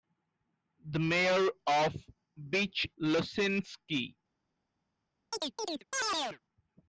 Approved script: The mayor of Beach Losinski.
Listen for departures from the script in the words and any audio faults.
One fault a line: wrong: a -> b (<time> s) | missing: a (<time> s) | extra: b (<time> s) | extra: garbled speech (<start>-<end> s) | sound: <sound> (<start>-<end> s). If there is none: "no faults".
sound: chirp (5.3-6.4 s)